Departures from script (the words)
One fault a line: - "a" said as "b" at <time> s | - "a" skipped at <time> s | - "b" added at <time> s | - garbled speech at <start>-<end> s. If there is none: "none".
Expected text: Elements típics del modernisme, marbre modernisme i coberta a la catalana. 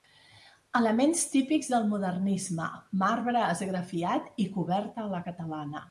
- "modernisme" said as "esgrafiat" at 3.5 s